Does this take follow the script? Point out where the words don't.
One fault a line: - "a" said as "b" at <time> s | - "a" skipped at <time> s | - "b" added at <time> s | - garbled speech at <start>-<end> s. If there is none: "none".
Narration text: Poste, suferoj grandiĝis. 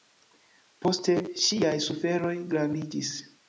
- "ŝiaj" added at 1.4 s